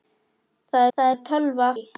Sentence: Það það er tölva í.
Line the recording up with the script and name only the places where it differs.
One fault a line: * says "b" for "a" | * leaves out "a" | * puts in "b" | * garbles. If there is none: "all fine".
all fine